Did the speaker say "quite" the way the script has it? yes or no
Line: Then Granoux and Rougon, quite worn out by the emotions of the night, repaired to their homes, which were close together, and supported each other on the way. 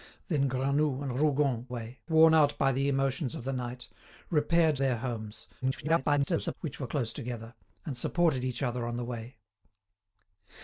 no